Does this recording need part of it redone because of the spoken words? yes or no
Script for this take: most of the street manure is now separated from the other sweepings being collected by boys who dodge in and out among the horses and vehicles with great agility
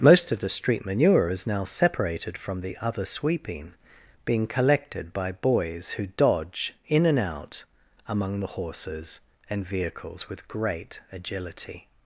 yes